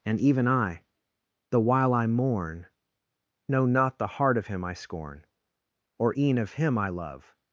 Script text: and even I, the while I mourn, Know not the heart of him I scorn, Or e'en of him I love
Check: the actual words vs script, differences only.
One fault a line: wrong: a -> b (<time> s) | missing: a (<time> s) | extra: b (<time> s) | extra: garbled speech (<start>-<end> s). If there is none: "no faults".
no faults